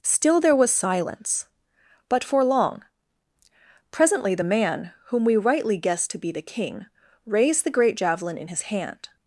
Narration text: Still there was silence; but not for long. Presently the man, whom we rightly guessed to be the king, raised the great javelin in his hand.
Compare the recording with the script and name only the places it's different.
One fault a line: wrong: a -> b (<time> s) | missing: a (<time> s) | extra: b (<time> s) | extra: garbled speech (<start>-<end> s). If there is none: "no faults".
missing: not (2.2 s)